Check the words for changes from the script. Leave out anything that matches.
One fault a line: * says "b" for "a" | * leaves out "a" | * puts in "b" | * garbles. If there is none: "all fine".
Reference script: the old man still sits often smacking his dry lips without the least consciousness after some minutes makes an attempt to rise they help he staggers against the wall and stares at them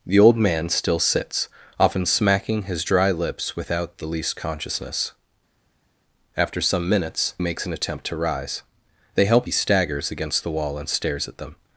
all fine